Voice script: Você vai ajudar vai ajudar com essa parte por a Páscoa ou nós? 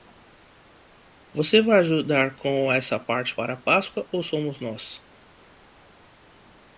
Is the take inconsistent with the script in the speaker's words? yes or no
yes